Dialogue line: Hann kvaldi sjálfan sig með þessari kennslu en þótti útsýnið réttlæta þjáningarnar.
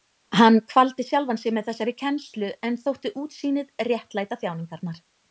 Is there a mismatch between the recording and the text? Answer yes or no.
no